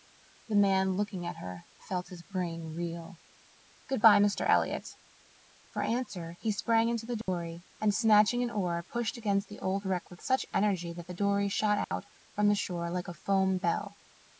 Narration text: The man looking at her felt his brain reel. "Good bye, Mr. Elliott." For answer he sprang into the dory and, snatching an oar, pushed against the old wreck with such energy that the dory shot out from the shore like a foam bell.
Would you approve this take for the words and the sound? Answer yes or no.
no